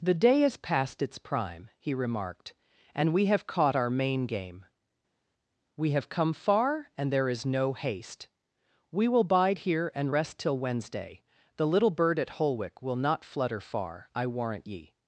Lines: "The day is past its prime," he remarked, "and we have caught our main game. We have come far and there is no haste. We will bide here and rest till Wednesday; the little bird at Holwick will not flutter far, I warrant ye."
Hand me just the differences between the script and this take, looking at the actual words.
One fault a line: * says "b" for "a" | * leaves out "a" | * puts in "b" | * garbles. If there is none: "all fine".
all fine